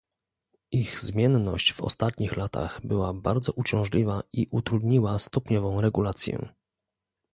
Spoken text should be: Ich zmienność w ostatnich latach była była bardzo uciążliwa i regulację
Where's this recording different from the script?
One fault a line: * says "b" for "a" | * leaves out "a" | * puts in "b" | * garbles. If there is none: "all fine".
* leaves out "była"
* puts in "utrudniła stopniową"